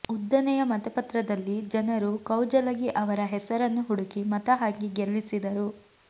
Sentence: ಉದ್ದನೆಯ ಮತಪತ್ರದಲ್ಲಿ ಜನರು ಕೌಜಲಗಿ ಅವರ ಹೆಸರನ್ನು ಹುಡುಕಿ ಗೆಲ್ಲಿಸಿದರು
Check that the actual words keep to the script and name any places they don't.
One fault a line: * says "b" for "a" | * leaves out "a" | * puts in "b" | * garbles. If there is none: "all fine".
* puts in "ಮತ ಹಾಕಿ"